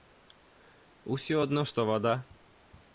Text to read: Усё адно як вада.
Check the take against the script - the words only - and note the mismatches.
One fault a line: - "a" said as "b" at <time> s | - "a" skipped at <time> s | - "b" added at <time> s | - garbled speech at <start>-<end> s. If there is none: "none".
- "як" said as "што" at 1.7 s